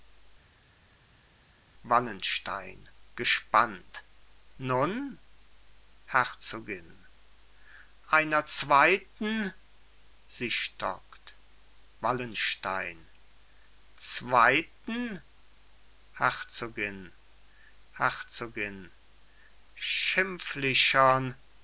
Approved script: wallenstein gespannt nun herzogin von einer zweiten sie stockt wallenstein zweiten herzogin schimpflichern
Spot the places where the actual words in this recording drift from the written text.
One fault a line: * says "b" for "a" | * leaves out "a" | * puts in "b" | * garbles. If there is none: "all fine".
* leaves out "von"
* puts in "herzogin"